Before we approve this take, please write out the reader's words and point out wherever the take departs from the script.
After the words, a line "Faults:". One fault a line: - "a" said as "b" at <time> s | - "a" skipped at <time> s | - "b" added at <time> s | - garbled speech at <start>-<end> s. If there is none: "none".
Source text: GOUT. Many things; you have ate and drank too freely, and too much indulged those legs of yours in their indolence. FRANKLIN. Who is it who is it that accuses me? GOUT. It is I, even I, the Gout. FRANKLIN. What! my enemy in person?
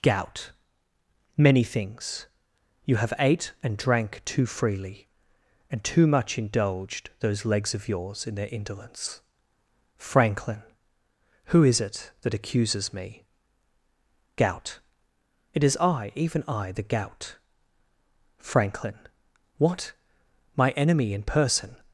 GOUT. Many things; you have ate and drank too freely, and too much indulged those legs of yours in their indolence. FRANKLIN. Who is it that accuses me? GOUT. It is I, even I, the Gout. FRANKLIN. What! my enemy in person?
Faults:
- "who is it" skipped at 12.1 s